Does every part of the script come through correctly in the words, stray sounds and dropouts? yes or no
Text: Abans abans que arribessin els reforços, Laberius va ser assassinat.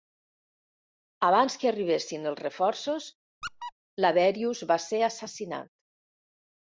no